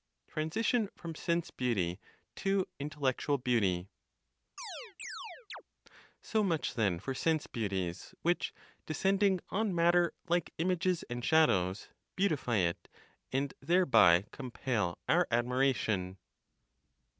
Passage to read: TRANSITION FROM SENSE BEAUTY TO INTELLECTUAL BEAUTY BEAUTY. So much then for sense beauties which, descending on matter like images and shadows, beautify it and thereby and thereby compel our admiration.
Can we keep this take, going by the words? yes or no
no